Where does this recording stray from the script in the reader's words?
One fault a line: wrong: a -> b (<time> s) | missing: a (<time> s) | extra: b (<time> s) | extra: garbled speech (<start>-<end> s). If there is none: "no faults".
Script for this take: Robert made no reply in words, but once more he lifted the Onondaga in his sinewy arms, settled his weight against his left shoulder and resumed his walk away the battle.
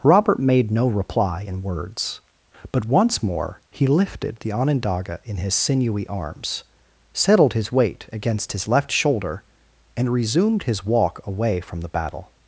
extra: from (11.6 s)